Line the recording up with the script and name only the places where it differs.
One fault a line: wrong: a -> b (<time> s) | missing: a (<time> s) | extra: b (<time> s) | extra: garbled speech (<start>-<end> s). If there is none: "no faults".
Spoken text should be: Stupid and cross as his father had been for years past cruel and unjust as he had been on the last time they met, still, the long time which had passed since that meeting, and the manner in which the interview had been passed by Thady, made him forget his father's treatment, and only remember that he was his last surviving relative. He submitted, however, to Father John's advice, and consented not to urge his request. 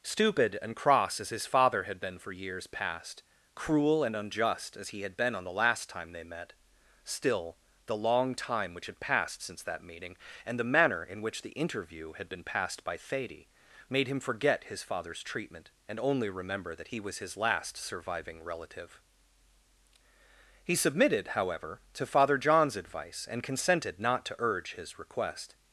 no faults